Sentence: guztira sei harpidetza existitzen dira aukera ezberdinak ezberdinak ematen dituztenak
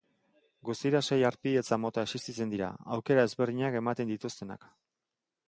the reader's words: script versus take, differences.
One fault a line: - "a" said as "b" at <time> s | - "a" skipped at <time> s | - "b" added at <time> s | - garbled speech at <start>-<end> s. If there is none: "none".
- "mota" added at 1.8 s
- "ezberdinak" skipped at 3.8 s